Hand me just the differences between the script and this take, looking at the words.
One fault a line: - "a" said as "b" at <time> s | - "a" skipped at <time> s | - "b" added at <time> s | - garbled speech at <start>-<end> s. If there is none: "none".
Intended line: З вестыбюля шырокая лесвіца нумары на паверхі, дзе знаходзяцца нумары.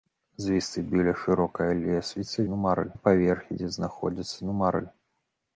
none